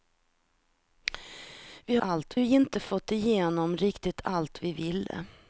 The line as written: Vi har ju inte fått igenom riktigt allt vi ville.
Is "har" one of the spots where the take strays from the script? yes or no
yes